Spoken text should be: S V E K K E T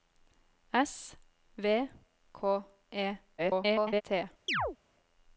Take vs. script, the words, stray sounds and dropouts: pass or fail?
fail